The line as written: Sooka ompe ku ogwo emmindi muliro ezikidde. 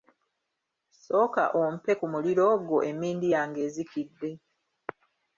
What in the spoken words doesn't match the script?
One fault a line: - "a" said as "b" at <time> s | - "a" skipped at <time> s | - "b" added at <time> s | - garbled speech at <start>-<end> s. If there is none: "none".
- "muliro" added at 2.1 s
- "muliro" said as "yange" at 3.3 s